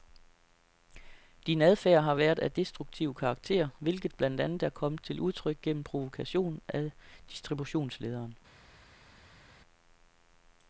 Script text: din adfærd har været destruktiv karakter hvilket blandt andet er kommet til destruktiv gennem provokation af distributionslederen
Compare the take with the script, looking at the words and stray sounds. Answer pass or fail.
fail